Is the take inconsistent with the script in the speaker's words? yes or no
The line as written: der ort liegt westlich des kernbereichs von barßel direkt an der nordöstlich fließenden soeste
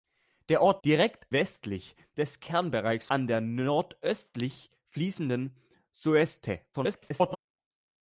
yes